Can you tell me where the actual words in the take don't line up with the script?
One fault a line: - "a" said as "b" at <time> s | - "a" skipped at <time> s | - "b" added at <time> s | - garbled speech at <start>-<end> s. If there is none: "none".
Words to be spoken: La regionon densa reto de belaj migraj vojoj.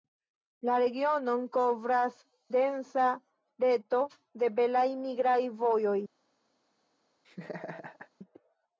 - "kovras" added at 1.6 s